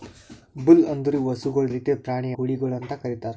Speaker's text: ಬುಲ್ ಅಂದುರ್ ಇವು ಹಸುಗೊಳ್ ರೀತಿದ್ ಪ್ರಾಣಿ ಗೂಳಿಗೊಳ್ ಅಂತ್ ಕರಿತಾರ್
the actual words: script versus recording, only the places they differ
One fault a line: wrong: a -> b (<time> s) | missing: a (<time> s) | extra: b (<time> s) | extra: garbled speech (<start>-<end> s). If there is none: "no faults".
no faults